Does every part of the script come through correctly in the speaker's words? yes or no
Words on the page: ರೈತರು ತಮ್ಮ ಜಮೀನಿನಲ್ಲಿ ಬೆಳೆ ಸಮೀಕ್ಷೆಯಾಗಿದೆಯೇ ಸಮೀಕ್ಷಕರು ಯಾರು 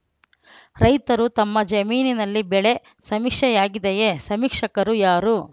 yes